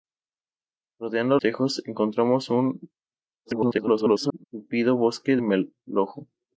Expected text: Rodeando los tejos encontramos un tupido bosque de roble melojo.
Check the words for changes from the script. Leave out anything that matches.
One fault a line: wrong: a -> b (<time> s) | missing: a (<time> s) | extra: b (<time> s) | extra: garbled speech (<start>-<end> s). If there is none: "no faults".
missing: los (1.4 s)
extra: garbled speech (3.4-4.4 s)
missing: de roble (5.4 s)